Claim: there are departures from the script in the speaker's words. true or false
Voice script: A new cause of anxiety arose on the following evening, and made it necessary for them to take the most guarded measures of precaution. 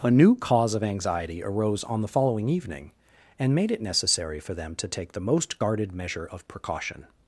true